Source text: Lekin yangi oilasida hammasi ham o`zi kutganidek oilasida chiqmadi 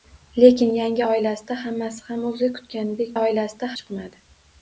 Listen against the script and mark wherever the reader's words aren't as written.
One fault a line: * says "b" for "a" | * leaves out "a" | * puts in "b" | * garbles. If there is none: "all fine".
all fine